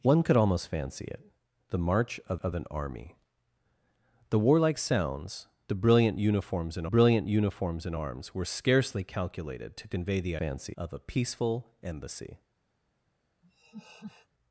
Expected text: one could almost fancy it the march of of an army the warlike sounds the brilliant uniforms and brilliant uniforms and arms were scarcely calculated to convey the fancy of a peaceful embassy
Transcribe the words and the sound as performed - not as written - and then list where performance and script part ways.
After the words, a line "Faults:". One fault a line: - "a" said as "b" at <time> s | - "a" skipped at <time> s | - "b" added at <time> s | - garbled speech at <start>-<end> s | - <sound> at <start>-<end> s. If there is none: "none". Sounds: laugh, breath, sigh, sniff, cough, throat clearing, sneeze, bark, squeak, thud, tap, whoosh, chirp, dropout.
one could almost fancy it the march of of an army the warlike sounds the brilliant uniforms and brilliant uniforms and arms were scarcely calculated to convey the fancy of a peaceful embassy
Faults:
- laugh at 13.4-14.3 s